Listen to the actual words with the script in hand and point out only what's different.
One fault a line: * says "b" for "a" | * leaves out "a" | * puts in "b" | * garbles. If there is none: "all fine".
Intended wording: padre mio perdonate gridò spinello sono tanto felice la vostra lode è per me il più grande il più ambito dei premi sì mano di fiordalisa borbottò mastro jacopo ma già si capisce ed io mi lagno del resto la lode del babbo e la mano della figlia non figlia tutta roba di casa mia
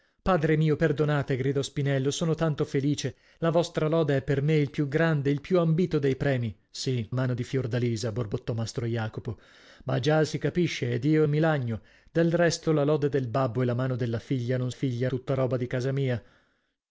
all fine